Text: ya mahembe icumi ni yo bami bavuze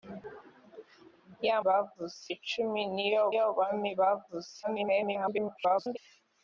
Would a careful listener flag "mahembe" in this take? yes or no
yes